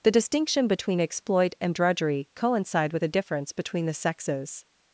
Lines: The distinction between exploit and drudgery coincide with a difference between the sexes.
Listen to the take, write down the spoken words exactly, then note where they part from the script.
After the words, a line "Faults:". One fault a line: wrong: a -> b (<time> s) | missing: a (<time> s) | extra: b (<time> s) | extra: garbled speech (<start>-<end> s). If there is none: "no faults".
The distinction between exploit and drudgery coincide with a difference between the sexes.
Faults:
no faults